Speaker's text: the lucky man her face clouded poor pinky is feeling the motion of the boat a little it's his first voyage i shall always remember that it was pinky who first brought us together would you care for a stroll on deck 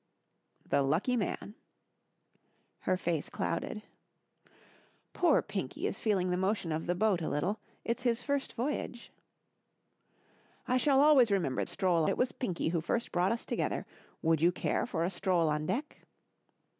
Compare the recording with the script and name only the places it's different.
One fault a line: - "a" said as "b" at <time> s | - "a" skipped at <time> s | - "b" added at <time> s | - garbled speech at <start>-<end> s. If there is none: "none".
- "that" said as "stroll" at 11.7 s